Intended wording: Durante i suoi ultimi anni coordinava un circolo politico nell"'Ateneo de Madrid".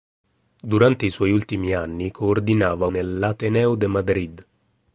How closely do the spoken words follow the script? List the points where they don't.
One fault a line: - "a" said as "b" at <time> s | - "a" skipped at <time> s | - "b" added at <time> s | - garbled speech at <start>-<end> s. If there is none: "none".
- "un circolo politico" skipped at 2.9 s